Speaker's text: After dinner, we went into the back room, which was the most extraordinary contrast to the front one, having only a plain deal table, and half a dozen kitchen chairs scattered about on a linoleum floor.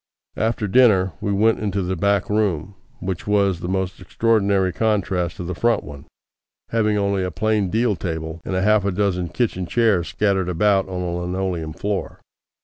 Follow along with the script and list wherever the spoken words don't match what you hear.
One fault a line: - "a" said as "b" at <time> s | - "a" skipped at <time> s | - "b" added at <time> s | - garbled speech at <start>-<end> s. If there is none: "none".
none